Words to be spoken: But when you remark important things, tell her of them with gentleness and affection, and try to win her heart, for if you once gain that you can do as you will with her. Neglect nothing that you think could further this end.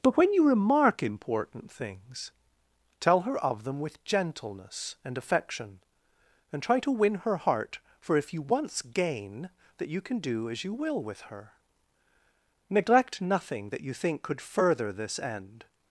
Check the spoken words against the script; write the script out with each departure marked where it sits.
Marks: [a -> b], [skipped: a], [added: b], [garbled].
But when you remark important things, tell her of them with gentleness and affection, and try to win her heart, for if you once gain that you can do as you will with her. Neglect nothing that you think could further this end.